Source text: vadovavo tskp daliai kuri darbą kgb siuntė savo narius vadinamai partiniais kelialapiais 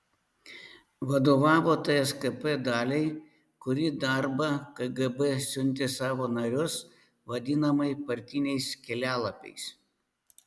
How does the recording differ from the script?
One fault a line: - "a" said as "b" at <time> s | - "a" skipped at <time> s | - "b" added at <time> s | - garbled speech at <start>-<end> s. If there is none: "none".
none